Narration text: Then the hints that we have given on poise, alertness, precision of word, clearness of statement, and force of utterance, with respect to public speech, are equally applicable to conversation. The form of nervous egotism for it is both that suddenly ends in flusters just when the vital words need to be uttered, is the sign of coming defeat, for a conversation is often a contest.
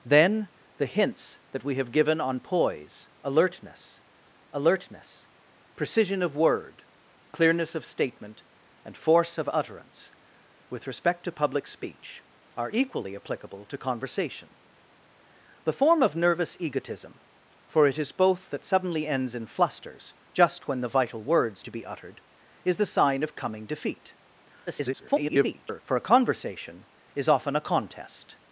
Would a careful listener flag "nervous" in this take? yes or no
no